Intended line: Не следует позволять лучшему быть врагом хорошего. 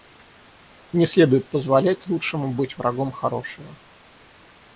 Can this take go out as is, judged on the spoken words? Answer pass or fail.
pass